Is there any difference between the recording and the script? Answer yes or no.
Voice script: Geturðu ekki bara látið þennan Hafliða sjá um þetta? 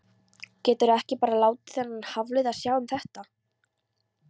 no